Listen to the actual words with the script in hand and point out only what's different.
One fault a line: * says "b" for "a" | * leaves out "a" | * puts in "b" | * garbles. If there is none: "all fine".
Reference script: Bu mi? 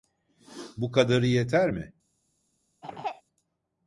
* puts in "kadarı yeter"